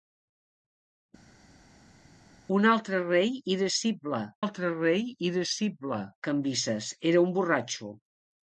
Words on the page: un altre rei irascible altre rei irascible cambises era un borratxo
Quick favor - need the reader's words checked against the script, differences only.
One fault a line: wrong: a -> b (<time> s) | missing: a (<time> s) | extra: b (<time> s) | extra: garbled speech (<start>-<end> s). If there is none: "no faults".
no faults